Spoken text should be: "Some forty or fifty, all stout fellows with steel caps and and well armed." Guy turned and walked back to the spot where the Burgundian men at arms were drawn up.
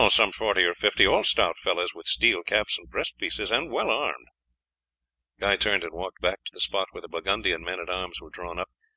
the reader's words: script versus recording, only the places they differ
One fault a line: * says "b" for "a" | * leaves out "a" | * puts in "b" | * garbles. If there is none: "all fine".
* puts in "breast pieces"